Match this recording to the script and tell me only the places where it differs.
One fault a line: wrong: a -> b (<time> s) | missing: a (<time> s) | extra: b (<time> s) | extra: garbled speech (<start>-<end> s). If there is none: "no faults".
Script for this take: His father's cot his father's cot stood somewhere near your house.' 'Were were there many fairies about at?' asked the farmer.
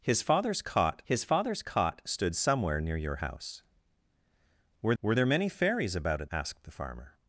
no faults